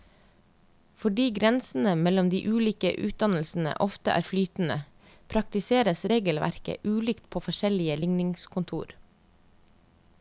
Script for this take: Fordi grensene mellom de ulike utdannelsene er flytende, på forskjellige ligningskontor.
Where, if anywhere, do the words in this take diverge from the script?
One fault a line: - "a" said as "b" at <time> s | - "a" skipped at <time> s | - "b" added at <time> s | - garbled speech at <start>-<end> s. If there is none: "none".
- "ofte" added at 3.9 s
- "praktiseres regelverket ulikt" added at 5.3 s